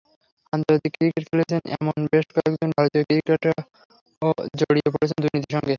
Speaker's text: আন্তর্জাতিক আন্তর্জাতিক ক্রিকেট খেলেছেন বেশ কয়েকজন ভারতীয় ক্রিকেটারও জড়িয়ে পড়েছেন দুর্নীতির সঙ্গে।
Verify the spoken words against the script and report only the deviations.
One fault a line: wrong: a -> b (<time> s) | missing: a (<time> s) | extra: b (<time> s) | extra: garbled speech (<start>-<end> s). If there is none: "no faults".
missing: আন্তর্জাতিক (0.9 s)
extra: এমন (1.8 s)